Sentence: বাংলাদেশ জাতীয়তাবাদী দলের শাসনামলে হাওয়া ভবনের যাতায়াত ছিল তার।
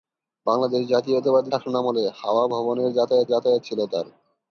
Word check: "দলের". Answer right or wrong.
wrong